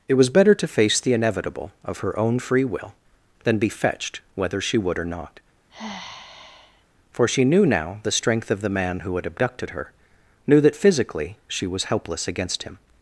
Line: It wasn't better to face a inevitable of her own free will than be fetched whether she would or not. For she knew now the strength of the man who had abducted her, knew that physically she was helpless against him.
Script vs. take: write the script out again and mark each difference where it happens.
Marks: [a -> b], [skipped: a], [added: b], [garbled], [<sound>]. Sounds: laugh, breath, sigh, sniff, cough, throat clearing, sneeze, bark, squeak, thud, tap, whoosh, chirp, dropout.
It [wasn't -> was] better to face [a -> the] inevitable of her own free will than be fetched whether she would or not. [sigh] For she knew now the strength of the man who had abducted her, knew that physically she was helpless against him.